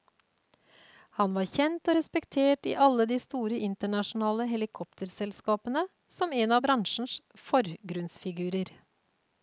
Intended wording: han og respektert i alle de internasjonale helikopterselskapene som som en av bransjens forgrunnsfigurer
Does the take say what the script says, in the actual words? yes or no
no